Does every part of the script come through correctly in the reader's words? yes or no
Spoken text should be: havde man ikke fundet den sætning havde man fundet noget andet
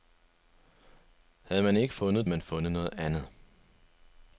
no